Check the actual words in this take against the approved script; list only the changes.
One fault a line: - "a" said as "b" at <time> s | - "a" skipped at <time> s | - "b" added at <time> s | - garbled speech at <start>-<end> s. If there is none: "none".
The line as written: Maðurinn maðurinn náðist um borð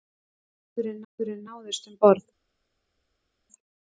none